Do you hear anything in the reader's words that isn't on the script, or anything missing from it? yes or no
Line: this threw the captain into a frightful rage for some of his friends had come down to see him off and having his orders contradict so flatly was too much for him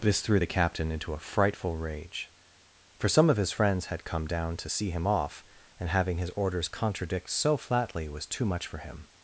no